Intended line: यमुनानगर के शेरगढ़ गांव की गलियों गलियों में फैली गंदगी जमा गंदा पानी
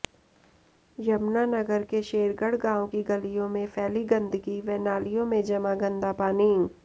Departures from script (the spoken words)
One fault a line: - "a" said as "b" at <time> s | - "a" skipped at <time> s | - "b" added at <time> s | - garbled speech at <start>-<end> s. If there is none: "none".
- "गलियों" skipped at 3.5 s
- "व नालियों में" added at 4.6 s